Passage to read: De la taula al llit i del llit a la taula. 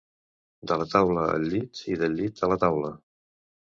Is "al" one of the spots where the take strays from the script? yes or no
no